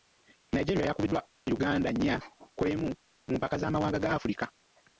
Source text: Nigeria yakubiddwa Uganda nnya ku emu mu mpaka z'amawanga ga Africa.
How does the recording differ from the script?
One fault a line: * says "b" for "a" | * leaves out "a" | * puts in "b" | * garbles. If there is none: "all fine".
all fine